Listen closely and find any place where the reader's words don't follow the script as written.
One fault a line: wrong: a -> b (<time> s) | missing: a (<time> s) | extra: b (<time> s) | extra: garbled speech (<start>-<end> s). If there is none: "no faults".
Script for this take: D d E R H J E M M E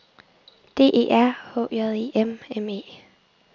missing: d (0.9 s)